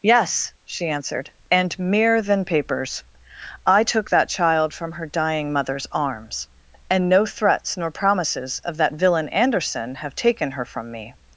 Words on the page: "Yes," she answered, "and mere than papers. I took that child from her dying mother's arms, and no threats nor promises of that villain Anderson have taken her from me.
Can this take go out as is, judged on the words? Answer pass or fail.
pass